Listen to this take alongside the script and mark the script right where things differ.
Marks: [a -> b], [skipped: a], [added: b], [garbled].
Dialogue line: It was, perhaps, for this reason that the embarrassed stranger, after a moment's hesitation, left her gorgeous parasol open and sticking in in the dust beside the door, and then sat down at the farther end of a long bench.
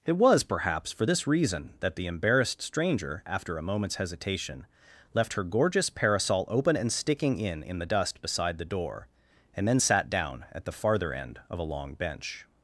It was, perhaps, for this reason that the embarrassed stranger, after a moment's hesitation, left her gorgeous parasol open and sticking in in the dust beside the door, and then sat down at the farther end of a long bench.